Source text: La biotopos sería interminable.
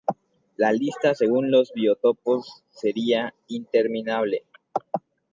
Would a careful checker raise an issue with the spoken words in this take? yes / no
yes